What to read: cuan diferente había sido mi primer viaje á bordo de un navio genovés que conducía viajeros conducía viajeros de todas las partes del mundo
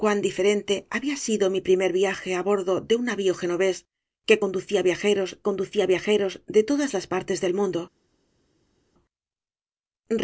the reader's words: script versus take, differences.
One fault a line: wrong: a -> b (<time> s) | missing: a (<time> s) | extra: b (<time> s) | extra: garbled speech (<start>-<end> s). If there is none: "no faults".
no faults